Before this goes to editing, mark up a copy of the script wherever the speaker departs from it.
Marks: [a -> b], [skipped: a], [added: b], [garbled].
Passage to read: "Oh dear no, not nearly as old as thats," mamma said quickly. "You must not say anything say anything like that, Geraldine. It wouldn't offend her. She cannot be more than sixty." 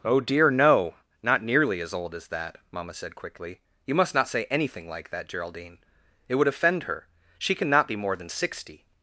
"Oh dear no, not nearly as old as [thats," -> that] mamma said quickly. "You must not say anything [skipped: say anything] like that, Geraldine. It [wouldn't -> would] offend her. She cannot be more than sixty."